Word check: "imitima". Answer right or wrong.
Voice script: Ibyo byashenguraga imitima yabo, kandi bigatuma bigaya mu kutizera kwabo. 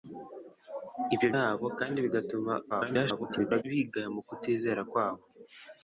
wrong